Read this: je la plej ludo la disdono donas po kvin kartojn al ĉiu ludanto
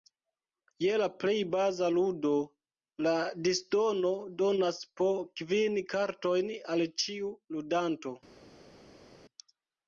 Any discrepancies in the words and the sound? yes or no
yes